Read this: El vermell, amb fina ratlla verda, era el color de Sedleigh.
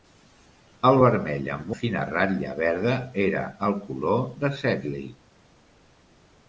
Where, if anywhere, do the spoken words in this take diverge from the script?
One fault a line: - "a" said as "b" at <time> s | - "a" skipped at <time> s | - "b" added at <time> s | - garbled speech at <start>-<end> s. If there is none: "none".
none